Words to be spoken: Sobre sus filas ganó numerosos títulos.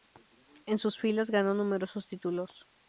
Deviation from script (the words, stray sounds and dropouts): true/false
true